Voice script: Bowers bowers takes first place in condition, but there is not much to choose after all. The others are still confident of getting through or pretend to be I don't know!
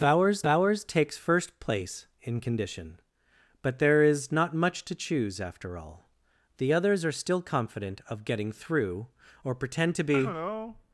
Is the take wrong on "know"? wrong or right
right